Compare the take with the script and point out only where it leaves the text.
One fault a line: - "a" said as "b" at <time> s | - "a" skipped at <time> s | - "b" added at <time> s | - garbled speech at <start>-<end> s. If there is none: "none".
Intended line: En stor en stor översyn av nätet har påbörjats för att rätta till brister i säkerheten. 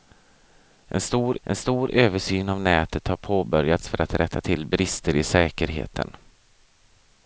none